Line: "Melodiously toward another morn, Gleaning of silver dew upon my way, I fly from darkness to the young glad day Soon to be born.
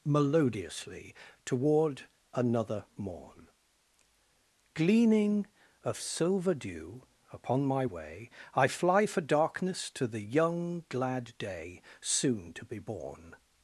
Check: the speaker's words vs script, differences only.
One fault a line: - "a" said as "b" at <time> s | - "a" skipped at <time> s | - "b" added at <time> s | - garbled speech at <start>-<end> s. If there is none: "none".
- "from" said as "for" at 9.1 s